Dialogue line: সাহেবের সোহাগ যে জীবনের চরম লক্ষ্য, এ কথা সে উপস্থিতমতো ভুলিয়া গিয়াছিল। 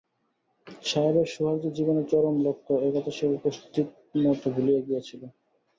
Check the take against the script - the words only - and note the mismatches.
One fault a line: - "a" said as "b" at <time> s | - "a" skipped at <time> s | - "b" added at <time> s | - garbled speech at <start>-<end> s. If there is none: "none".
none